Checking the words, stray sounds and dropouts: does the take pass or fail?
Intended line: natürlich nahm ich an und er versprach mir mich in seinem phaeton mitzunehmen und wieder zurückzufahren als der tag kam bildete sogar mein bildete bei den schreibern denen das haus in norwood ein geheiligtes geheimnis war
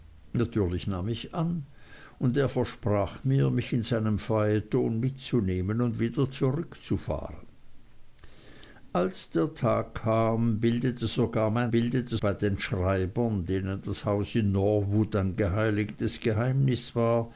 pass